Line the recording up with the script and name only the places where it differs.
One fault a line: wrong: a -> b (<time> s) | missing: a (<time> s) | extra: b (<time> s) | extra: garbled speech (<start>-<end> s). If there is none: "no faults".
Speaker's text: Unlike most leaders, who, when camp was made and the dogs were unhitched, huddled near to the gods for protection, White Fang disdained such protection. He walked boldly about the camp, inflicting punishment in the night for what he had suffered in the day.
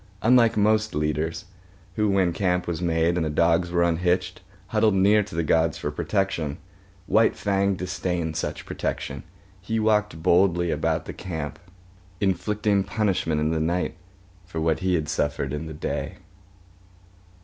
no faults